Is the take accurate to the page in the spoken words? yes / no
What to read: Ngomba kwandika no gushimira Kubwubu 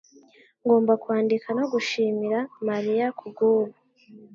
no